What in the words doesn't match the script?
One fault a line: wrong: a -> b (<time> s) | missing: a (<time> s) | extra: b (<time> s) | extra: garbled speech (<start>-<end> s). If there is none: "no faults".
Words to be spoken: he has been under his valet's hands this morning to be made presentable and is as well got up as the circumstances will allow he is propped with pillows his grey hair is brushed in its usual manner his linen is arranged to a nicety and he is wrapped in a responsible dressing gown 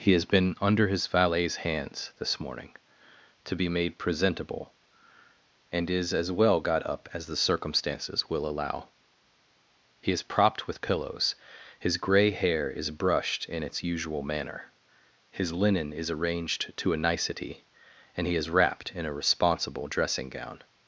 no faults